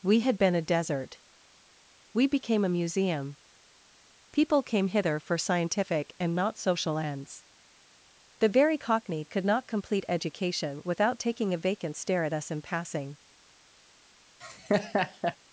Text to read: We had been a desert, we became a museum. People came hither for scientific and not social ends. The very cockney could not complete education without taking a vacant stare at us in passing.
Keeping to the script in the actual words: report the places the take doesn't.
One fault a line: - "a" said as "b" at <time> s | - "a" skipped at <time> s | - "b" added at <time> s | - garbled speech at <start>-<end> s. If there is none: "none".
none